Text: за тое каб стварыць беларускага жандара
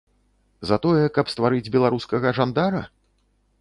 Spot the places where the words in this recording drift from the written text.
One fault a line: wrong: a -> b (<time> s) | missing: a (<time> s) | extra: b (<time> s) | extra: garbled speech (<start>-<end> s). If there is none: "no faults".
no faults